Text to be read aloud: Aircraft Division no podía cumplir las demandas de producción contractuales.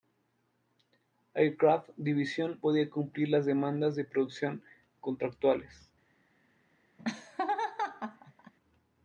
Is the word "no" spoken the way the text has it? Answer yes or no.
no